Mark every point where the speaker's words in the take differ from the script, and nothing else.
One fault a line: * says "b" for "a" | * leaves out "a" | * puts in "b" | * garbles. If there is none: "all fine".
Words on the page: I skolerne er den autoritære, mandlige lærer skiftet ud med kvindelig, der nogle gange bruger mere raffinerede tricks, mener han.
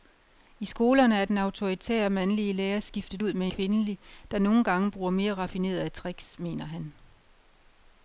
all fine